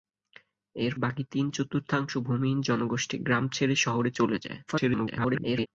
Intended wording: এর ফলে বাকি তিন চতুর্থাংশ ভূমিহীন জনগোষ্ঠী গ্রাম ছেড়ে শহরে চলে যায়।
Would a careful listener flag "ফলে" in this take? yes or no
yes